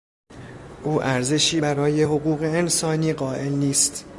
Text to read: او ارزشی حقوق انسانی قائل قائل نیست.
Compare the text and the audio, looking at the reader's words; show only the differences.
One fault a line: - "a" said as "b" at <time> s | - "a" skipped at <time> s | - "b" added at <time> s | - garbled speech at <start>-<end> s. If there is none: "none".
- "برای" added at 1.6 s
- "قائل" skipped at 3.5 s